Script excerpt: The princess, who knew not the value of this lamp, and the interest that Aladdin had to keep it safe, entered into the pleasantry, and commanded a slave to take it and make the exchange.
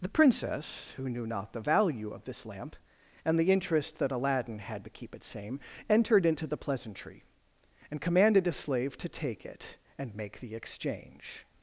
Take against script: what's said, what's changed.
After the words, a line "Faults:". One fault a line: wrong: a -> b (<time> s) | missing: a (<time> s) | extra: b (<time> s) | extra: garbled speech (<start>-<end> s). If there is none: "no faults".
The princess, who knew not the value of this lamp, and the interest that Aladdin had to keep it same, entered into the pleasantry, and commanded a slave to take it and make the exchange.
Faults:
wrong: safe -> same (5.2 s)